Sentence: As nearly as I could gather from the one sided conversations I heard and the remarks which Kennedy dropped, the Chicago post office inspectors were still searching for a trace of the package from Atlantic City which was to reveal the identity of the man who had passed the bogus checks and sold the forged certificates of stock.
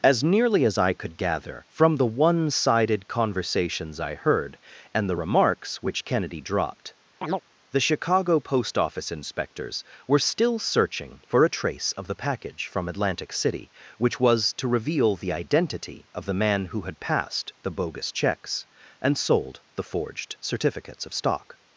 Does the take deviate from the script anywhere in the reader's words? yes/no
no